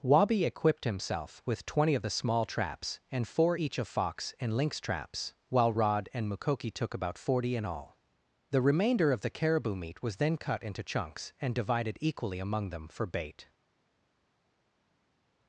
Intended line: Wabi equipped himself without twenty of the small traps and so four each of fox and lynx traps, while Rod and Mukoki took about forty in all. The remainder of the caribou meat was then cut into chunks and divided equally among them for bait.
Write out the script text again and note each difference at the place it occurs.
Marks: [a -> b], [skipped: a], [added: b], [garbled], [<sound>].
Wabi equipped himself [without -> with] twenty of the small traps and [skipped: so] four each of fox and lynx traps, while Rod and Mukoki took about forty in all. The remainder of the caribou meat was then cut into chunks and divided equally among them for bait.